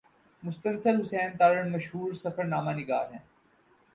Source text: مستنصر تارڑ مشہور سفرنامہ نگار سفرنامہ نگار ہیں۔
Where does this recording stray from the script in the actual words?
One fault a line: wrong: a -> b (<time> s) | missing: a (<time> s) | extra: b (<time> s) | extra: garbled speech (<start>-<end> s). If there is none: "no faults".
extra: حسین (1.0 s)
missing: سفرنامہ نگار (3.1 s)